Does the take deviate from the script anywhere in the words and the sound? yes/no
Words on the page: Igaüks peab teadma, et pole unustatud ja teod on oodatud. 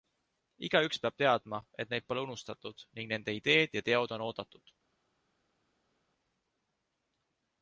yes